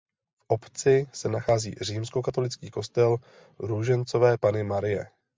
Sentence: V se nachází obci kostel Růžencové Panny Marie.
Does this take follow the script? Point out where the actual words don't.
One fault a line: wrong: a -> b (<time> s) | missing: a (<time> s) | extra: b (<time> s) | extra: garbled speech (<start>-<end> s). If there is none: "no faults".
extra: obci (0.5 s)
wrong: obci -> římskokatolický (1.8 s)